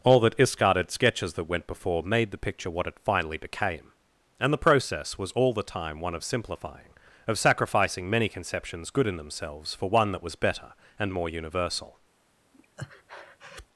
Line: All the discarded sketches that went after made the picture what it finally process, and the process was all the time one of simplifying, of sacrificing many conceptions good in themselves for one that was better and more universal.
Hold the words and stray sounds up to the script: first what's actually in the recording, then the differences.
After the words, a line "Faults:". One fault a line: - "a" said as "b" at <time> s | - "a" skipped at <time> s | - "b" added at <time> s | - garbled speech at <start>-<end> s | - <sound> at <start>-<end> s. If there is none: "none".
All the discarded sketches that went before made the picture what it finally became, and the process was all the time one of simplifying, of sacrificing many conceptions good in themselves for one that was better and more universal.
Faults:
- "after" said as "before" at 1.7 s
- "process" said as "became" at 3.4 s
- breath at 12.5-13.7 s